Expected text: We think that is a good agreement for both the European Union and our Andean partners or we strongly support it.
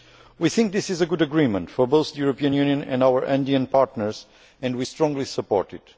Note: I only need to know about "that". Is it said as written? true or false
false